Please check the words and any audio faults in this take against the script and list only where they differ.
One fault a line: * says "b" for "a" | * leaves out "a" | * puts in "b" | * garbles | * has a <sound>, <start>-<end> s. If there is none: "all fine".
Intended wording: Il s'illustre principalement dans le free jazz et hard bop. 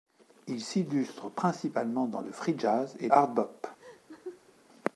* has a laugh, 3.8-4.5 s